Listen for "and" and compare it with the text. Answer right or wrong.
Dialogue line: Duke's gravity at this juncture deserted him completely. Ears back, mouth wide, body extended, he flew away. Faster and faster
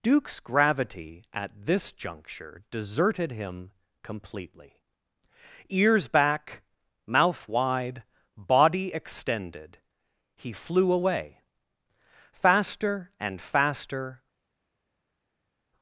right